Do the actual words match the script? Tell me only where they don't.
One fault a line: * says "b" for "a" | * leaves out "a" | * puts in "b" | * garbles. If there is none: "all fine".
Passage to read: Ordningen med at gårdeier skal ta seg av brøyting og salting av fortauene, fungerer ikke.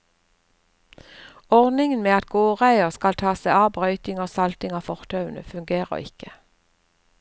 all fine